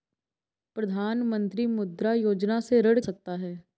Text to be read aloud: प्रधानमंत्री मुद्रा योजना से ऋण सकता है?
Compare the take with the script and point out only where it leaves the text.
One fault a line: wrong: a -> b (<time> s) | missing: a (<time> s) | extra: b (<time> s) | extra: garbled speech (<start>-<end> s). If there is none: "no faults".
no faults